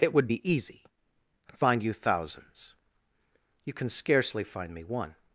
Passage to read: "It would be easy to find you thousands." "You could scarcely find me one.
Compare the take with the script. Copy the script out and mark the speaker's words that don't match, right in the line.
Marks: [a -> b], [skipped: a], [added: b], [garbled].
"It would be easy [skipped: to] find you thousands." "You [could -> can] scarcely find me one.